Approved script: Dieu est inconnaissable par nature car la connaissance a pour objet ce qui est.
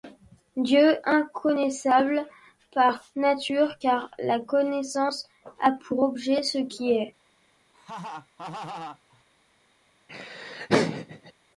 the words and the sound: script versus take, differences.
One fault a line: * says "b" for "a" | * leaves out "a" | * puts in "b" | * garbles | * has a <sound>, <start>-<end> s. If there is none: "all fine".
* leaves out "est"
* has a laugh, 7.7-9.2 s
* has a laugh, 10.1-11.3 s